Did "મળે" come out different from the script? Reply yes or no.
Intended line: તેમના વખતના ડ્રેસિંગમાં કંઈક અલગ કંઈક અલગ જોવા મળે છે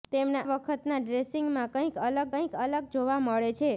no